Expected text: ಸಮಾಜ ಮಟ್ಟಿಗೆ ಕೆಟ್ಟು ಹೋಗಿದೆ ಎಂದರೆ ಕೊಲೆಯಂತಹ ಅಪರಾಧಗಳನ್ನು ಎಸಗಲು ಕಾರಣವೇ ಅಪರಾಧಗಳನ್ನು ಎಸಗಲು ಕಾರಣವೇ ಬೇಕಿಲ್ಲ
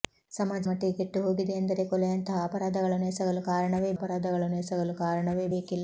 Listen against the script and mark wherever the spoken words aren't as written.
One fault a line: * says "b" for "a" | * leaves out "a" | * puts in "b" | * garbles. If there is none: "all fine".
all fine